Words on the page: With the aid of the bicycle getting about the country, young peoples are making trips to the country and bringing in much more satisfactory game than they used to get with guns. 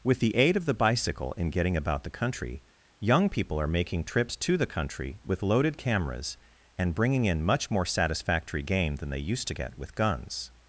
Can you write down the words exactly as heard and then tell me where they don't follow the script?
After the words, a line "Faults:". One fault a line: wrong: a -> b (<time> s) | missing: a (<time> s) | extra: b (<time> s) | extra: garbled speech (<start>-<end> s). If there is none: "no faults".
With the aid of the bicycle in getting about the country, young people are making trips to the country with loaded cameras and bringing in much more satisfactory game than they used to get with guns.
Faults:
extra: in (1.4 s)
wrong: peoples -> people (3.3 s)
extra: with loaded cameras (5.2 s)